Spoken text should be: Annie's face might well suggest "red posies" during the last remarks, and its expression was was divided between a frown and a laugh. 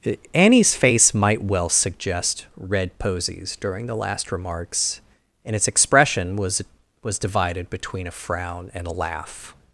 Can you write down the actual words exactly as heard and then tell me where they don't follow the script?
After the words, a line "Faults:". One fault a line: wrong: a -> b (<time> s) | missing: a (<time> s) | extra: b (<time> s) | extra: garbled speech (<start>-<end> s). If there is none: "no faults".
Annie's face might well suggest "red posies" during the last remarks, and its expression was was divided between a frown and a laugh.
Faults:
no faults